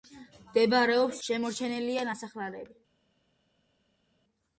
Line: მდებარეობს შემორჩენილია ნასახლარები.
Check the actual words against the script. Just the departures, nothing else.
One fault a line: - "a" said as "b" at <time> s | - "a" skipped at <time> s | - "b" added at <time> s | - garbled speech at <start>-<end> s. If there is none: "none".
none